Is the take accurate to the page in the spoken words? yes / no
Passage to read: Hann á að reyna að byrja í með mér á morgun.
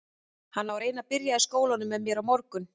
no